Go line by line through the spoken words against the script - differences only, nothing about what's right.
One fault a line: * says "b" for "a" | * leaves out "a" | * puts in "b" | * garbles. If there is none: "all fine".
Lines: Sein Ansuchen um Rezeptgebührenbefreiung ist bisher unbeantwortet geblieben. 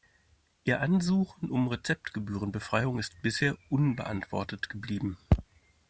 * says "Ihr" for "Sein"